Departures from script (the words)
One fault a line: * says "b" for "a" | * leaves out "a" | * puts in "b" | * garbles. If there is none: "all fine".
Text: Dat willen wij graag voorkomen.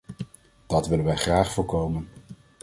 all fine